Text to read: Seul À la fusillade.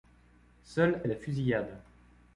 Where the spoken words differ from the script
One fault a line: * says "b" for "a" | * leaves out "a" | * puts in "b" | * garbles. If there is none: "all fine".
all fine